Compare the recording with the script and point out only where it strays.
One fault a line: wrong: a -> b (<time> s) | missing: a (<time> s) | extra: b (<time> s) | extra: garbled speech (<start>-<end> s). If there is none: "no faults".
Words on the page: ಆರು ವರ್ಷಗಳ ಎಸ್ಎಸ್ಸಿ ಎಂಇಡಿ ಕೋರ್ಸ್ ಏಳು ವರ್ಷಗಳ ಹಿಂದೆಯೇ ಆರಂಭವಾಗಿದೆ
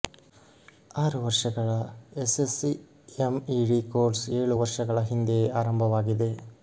no faults